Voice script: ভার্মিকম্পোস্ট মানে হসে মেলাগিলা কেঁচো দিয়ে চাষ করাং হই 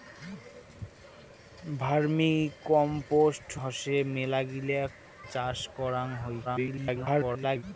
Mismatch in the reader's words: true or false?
true